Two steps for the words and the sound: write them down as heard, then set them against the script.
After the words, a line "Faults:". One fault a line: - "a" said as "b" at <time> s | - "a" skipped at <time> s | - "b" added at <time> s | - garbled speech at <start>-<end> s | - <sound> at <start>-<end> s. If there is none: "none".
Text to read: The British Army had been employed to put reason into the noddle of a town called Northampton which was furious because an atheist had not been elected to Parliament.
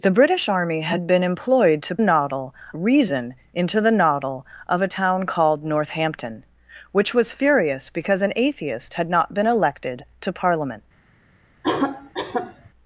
The British Army had been employed to noddle reason into the noddle of a town called Northampton which was furious because an atheist had not been elected to Parliament.
Faults:
- "put" said as "noddle" at 2.0 s
- cough at 11.6-12.7 s